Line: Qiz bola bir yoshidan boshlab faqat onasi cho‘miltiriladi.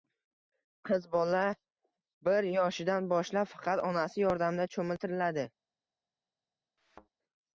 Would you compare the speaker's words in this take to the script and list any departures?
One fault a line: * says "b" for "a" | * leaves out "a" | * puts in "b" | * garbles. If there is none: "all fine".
* puts in "yordamida"